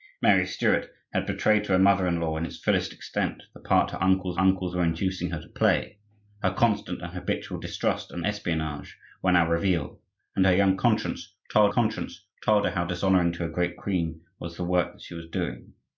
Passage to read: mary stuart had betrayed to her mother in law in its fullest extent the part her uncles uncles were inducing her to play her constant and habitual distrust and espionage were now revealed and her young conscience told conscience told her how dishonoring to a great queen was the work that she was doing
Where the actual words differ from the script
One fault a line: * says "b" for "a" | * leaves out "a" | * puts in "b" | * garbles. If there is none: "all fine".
all fine